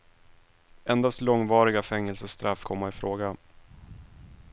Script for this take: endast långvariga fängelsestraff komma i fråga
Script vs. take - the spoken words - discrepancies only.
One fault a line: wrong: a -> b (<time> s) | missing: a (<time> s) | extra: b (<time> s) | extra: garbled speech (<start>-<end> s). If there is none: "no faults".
no faults